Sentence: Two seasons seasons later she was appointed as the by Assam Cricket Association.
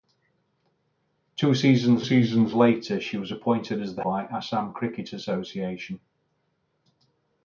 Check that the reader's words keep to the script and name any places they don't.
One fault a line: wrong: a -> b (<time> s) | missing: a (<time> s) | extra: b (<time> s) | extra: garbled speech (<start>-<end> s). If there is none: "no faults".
no faults